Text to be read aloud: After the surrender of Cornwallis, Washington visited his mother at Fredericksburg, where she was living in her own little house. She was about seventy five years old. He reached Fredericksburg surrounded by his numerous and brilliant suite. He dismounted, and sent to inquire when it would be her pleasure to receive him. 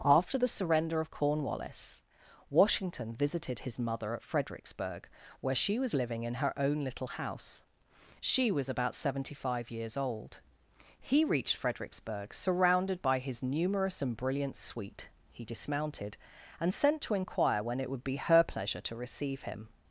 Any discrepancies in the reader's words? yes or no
no